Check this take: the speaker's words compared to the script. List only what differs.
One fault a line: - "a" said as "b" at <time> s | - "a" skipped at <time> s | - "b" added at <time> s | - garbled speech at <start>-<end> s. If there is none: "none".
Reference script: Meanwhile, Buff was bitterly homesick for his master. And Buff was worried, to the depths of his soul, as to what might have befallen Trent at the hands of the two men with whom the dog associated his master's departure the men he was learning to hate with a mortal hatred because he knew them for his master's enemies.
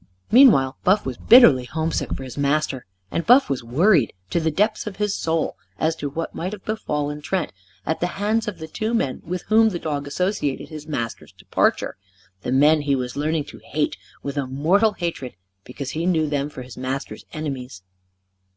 none